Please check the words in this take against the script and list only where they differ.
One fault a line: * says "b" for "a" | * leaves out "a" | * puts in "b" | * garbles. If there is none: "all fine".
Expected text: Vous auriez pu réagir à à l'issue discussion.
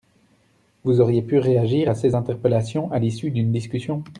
* puts in "ces interpellations"
* puts in "d'une"